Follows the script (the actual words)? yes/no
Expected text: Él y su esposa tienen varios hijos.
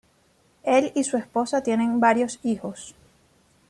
yes